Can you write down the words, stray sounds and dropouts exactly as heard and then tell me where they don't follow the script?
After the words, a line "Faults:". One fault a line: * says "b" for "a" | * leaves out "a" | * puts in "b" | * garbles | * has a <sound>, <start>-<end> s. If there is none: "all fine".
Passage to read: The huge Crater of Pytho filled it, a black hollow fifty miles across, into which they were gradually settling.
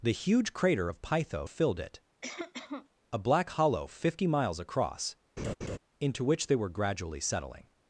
The huge Crater of Pytho filled it, a black hollow fifty miles across, into which they were gradually settling.
Faults:
* has a cough, 2.2-2.9 s
* has a laugh, 5.4-5.8 s